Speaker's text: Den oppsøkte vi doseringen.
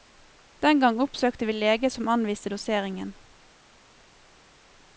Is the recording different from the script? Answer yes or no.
yes